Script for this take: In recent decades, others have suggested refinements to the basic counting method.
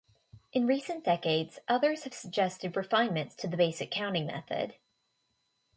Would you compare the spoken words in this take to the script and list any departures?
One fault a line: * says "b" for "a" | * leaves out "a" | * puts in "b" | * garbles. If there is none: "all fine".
all fine